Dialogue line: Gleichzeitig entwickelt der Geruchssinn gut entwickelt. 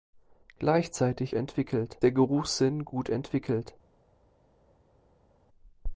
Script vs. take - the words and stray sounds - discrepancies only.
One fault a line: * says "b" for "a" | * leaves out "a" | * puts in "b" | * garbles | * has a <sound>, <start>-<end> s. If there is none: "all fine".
all fine